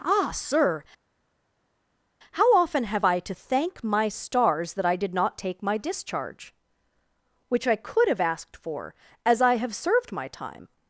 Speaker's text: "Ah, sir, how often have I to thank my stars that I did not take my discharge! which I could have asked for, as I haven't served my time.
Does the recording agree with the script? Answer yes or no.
no